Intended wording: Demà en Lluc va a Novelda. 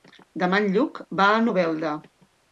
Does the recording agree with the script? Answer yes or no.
yes